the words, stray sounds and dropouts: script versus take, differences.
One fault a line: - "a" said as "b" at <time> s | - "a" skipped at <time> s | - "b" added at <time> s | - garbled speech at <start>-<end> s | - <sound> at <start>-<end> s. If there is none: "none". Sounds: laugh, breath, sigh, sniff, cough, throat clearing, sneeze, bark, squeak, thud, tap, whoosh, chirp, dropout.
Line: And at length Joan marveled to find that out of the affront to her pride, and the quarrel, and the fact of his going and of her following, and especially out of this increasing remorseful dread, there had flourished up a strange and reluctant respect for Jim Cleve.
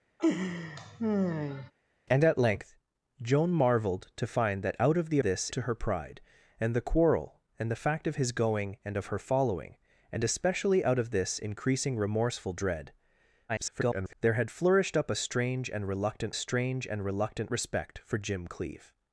- laugh at 0.2-1.7 s
- "affront" said as "this" at 5.2 s
- garbled speech at 13.5-14.1 s
- "strange and reluctant" added at 16.3 s